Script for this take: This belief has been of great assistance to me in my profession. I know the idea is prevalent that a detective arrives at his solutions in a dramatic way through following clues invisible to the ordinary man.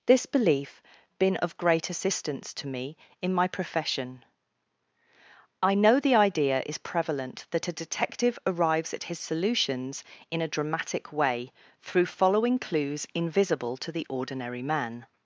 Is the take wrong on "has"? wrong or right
wrong